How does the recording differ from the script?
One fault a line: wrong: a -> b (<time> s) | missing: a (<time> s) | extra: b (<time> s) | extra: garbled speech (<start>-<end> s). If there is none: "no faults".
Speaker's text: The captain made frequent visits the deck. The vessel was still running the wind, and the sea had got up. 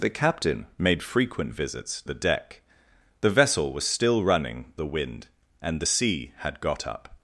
no faults